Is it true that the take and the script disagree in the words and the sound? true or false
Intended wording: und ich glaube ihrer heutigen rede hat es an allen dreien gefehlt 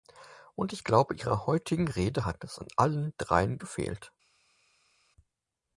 false